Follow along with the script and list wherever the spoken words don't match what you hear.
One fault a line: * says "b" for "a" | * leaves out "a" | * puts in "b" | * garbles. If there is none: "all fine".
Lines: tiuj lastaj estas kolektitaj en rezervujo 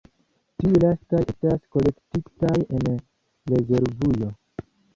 all fine